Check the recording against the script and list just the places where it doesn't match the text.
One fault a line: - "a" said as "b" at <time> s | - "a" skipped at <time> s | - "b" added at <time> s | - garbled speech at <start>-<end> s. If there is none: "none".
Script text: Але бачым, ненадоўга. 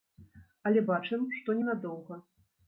- "што" added at 1.4 s